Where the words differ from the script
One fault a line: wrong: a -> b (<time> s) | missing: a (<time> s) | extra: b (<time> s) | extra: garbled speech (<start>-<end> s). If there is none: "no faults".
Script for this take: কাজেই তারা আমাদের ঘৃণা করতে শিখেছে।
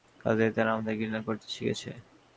no faults